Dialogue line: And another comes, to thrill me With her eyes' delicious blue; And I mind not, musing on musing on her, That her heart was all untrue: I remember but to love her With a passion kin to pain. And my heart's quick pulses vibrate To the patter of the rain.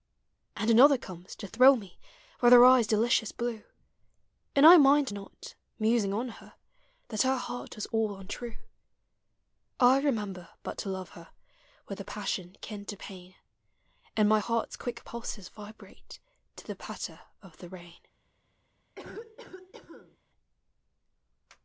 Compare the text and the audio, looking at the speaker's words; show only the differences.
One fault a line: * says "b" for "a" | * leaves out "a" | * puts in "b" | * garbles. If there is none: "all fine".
* leaves out "musing on"